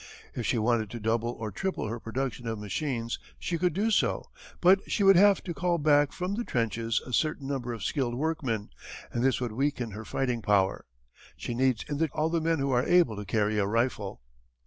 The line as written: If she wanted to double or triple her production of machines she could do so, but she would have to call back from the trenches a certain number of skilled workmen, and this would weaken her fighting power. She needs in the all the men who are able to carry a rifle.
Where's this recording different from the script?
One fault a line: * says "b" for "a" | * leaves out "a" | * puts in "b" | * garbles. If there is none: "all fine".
all fine